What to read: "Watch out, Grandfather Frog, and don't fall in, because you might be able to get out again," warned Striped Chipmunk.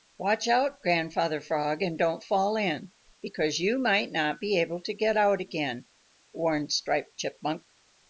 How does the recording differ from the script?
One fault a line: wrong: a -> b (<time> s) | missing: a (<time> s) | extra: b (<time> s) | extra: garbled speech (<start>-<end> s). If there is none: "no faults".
extra: not (4.1 s)